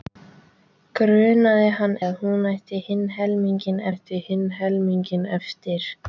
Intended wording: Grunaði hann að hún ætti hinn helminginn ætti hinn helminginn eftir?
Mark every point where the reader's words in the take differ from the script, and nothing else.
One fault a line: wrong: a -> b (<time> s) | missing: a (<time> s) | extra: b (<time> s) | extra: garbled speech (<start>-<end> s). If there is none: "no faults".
no faults